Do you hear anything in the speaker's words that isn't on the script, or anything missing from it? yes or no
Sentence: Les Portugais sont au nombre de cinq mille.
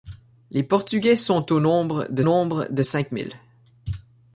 yes